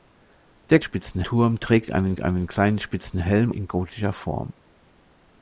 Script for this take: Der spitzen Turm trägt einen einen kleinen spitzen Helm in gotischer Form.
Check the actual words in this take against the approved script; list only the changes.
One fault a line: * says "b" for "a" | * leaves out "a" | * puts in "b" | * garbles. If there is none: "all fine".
all fine